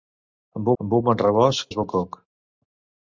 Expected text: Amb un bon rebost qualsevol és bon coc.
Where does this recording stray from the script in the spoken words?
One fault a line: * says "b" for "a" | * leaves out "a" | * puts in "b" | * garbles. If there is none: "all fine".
* puts in "amb"
* leaves out "qualsevol"